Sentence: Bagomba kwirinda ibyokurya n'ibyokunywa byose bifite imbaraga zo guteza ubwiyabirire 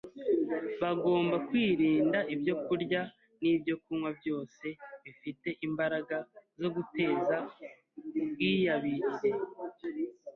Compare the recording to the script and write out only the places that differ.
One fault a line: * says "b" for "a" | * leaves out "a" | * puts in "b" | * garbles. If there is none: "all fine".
all fine